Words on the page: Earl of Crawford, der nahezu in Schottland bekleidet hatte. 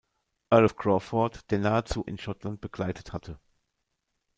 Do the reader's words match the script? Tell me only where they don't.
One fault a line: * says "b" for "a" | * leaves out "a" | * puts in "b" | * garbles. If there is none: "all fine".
all fine